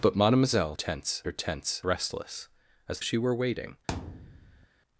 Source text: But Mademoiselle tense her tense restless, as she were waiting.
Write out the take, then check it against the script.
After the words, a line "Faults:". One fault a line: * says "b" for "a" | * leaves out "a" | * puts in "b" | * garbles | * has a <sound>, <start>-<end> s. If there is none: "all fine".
But Mademoiselle tense her tense restless, as she were waiting.
Faults:
* has a thud, 3.9-4.7 s